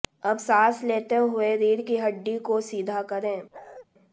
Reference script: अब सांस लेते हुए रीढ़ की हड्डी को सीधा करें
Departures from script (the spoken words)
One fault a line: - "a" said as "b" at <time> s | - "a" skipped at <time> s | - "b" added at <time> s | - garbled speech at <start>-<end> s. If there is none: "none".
none